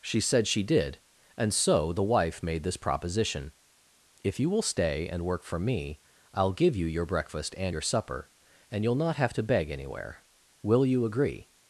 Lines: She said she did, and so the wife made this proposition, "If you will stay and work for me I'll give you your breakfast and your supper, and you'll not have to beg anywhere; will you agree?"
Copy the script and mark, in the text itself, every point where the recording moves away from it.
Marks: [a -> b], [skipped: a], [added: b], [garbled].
She said she did, and so the wife made this proposition, "If you will stay and work for me I'll give you your breakfast and your supper, and you'll not have to beg anywhere; will you agree?"